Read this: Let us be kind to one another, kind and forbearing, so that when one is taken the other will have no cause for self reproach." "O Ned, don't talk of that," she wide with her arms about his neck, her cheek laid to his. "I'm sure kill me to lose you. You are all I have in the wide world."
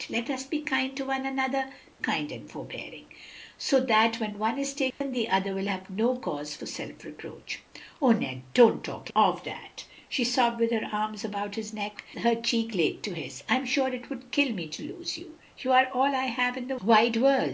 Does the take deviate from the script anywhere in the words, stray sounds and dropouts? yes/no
yes